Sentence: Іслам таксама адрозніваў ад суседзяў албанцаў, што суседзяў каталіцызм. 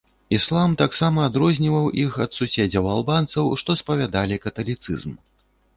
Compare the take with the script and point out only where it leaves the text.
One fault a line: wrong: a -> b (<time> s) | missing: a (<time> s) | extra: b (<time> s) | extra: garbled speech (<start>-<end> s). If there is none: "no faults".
extra: іх (2.0 s)
wrong: суседзяў -> спавядалі (3.8 s)